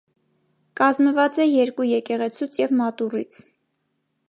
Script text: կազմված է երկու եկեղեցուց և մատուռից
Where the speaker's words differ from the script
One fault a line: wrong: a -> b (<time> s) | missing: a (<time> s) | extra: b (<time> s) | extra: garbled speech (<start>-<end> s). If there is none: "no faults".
no faults